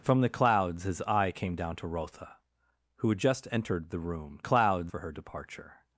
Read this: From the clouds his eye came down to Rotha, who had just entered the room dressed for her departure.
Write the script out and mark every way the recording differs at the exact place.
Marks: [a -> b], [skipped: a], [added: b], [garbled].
From the clouds his eye came down to Rotha, who had just entered the room [dressed -> clouds] for her departure.